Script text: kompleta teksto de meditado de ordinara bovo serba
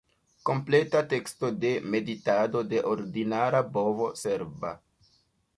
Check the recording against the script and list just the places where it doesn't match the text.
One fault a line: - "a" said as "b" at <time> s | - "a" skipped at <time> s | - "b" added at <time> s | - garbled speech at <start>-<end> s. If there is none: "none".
none